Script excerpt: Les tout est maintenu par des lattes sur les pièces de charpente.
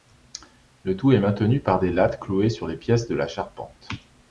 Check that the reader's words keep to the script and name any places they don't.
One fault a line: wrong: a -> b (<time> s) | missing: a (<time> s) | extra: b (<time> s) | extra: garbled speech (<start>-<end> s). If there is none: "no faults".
wrong: Les -> Le (0.8 s)
extra: clouées (2.2 s)
extra: la (3.1 s)